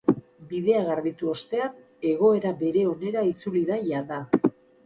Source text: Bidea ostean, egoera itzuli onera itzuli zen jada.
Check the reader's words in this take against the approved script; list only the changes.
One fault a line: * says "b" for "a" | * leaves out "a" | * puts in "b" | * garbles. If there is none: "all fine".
* puts in "garbitu"
* says "bere" for "itzuli"
* says "da" for "zen"